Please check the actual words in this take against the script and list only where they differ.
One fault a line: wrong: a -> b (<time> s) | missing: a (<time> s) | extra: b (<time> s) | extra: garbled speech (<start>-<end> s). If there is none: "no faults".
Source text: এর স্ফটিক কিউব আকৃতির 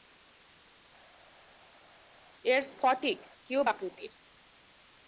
no faults